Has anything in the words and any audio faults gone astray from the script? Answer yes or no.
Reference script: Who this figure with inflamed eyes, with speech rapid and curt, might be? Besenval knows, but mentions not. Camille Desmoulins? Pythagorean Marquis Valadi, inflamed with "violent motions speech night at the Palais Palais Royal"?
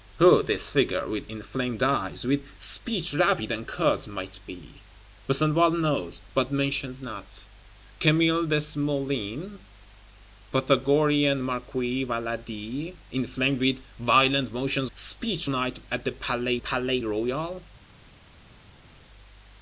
no